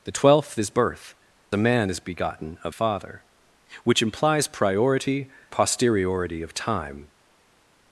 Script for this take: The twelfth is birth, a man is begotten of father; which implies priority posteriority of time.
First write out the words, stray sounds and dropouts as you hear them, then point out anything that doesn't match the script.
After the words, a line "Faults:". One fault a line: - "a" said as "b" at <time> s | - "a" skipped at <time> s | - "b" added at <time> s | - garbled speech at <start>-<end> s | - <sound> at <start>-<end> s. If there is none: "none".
The twelfth is birth, a man is begotten of father; which implies priority posteriority of time.
Faults:
none